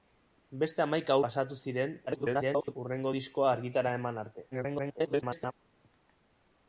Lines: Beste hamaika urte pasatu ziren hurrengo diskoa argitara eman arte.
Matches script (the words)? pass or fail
fail